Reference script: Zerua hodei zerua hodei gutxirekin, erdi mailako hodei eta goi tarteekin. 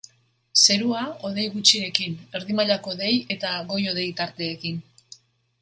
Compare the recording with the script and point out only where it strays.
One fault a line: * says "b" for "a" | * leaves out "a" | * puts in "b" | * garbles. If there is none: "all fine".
* leaves out "zerua hodei"
* puts in "hodei"